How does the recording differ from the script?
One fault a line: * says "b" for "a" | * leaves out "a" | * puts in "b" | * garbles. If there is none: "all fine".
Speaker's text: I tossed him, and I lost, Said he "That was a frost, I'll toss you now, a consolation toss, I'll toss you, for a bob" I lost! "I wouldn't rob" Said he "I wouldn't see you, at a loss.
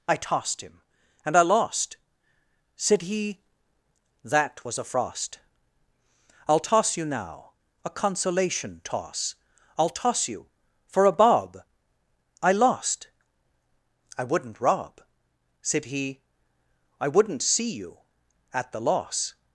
* says "the" for "a"